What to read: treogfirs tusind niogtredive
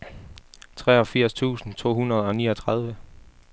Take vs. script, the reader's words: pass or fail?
fail